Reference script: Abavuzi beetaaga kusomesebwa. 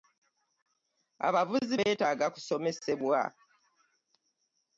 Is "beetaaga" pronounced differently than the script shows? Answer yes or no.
no